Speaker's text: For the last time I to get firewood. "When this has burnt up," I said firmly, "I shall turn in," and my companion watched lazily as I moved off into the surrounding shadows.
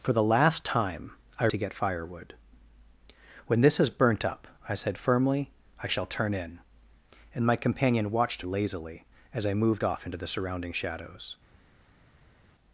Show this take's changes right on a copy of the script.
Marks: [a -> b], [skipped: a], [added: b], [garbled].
For the last time I to get firewood. "When this has burnt up," I said firmly, "I shall turn in," and my companion watched lazily as I moved off into the surrounding shadows.